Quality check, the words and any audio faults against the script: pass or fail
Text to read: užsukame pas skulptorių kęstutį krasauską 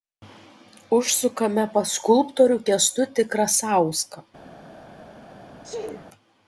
fail